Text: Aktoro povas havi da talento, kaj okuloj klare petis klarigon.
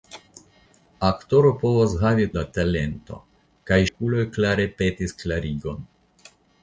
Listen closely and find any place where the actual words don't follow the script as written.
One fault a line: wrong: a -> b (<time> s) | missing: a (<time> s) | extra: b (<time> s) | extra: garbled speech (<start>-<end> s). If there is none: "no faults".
no faults